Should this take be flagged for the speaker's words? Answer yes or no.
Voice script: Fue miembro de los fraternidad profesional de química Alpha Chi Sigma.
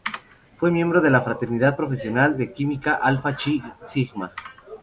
yes